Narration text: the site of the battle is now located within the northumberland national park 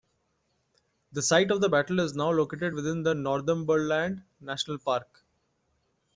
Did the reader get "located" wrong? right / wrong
right